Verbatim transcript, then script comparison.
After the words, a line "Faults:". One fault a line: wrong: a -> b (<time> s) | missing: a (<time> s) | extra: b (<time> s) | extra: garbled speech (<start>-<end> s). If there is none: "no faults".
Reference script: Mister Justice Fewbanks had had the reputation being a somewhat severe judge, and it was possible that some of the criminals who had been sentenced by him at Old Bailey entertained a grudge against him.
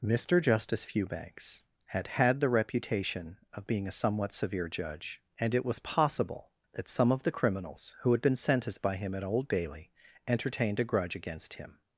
Mister Justice Fewbanks had had the reputation of being a somewhat severe judge, and it was possible that some of the criminals who had been sentenced by him at Old Bailey entertained a grudge against him.
Faults:
extra: of (3.5 s)